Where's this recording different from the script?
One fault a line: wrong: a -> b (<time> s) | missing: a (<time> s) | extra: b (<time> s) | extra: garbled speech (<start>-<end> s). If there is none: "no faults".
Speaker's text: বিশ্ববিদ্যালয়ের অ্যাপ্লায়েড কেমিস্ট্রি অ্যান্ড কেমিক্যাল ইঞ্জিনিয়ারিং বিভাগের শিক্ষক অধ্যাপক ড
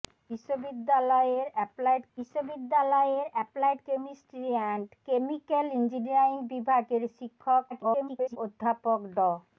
extra: বিশ্ববিদ্যালয়ের অ্যাপ্লায়েড (2.2 s)
extra: garbled speech (7.7-8.4 s)